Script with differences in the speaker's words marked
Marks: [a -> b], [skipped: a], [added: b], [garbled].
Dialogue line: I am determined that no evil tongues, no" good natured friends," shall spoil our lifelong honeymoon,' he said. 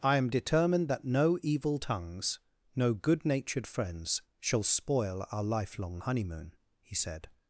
I am determined that no evil tongues, no" good natured friends," shall spoil our lifelong honeymoon,' he said.